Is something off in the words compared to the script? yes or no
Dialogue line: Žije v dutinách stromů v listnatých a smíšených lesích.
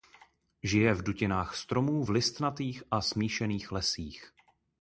no